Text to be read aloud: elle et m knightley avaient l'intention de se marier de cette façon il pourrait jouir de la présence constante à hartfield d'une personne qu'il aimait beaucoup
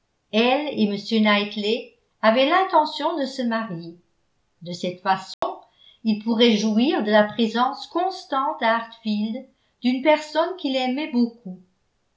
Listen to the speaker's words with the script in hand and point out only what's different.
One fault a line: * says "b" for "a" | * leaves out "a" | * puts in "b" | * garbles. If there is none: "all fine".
all fine